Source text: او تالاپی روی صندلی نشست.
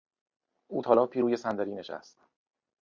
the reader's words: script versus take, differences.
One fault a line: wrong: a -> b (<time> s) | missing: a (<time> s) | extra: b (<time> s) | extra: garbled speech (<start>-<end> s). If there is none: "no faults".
no faults